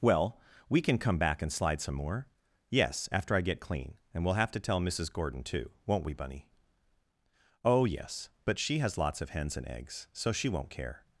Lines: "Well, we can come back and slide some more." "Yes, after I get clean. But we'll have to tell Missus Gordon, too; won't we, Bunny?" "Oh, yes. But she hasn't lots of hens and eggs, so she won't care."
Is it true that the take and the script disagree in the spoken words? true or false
true